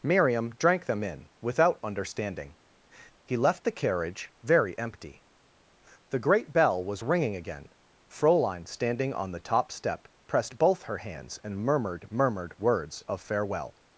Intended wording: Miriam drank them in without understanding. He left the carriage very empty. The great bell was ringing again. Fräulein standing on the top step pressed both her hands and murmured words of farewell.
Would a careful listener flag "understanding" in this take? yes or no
no